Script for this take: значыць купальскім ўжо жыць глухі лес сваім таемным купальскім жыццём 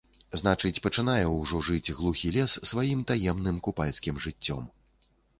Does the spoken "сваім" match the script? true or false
true